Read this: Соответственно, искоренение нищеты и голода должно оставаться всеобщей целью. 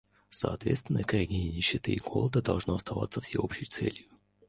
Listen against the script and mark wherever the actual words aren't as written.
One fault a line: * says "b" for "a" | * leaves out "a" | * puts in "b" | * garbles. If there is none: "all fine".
all fine